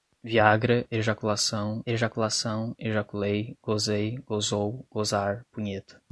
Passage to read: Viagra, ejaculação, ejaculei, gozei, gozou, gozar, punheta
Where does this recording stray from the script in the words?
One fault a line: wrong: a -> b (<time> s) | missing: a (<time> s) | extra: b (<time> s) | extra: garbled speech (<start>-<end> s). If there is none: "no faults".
extra: ejaculação (1.9 s)